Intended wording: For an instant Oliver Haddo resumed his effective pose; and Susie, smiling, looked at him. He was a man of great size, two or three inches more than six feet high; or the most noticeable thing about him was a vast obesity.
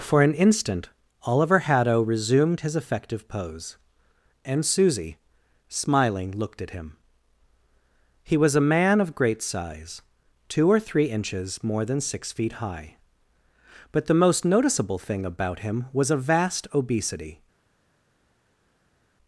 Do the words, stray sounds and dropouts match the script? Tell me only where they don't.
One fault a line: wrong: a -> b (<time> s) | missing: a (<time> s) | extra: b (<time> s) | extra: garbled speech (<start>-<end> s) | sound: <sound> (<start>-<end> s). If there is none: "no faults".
wrong: or -> but (13.9 s)